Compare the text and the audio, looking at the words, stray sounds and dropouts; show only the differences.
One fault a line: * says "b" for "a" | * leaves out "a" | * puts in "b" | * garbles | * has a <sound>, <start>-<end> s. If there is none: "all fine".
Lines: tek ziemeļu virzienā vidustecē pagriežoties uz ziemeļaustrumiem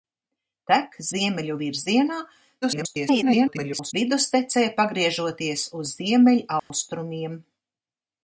* garbles
* has a dropout, 6.6-6.7 s